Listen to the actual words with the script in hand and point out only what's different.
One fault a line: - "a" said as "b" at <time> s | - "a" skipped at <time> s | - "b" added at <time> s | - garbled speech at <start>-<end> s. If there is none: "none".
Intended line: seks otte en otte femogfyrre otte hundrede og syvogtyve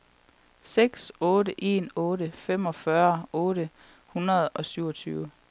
none